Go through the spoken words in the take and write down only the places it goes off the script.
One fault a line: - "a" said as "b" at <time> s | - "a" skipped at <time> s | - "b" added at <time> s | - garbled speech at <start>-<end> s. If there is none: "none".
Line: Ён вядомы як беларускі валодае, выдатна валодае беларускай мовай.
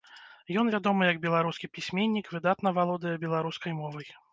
- "валодае" said as "пісьменнік" at 1.7 s